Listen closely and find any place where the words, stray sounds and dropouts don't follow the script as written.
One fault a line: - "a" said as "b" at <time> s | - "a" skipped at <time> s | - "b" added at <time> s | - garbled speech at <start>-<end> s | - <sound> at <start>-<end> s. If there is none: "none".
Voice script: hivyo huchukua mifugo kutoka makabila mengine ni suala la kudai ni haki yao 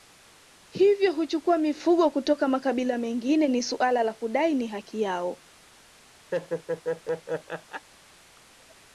- laugh at 6.3-7.9 s